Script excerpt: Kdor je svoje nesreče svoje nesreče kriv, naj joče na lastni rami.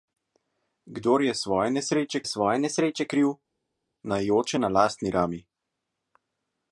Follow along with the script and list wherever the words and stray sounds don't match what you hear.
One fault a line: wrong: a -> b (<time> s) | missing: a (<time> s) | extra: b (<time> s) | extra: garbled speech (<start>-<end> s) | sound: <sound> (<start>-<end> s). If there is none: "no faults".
no faults